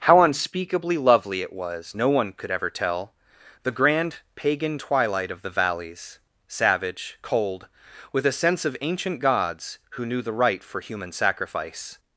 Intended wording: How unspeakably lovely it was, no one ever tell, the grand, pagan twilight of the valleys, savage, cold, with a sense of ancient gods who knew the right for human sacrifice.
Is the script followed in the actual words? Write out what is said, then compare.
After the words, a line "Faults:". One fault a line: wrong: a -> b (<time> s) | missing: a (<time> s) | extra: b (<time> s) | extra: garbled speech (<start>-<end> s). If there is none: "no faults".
How unspeakably lovely it was, no one could ever tell, the grand, pagan twilight of the valleys, savage, cold, with a sense of ancient gods who knew the right for human sacrifice.
Faults:
extra: could (2.3 s)